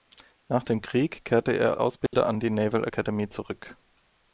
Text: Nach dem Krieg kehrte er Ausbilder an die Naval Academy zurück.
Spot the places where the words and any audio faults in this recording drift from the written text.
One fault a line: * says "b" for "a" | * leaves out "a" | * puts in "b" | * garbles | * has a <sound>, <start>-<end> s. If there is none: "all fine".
* has a dropout, 2.1-2.1 s